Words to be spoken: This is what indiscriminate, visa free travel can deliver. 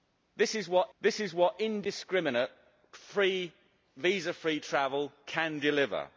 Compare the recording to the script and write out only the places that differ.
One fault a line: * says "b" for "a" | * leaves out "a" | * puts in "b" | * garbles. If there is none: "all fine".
* puts in "this is what"